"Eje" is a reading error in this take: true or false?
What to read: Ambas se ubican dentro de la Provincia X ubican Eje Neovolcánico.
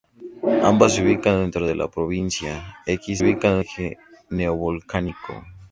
false